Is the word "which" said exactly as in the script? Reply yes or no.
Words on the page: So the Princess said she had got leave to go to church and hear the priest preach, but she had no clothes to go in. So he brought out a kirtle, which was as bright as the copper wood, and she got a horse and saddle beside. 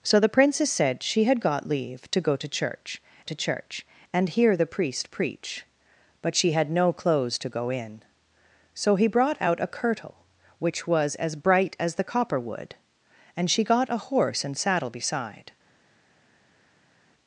yes